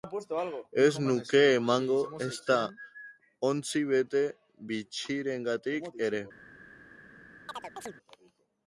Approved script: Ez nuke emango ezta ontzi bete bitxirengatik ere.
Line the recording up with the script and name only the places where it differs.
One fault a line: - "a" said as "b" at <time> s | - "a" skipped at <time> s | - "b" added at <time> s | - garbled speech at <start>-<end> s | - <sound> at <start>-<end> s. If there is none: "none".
- chirp at 7.5-8.0 s